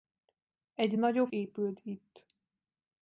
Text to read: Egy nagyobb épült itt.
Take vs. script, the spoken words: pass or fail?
pass